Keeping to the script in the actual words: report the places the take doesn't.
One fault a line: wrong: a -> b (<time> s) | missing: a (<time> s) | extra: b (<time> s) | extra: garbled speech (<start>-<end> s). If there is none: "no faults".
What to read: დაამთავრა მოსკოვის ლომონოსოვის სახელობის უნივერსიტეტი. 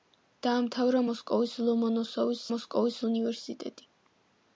wrong: სახელობის -> მოსკოვის (2.5 s)